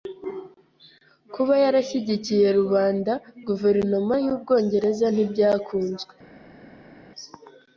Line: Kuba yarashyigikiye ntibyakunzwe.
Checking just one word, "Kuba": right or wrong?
right